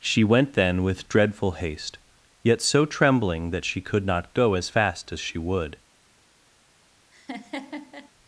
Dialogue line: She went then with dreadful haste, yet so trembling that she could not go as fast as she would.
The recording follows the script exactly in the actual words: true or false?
true